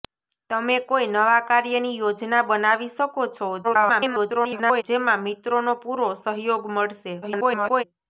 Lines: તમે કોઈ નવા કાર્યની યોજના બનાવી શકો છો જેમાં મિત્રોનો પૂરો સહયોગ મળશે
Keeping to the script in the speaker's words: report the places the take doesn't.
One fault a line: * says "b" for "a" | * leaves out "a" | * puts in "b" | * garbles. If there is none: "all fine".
* garbles
* garbles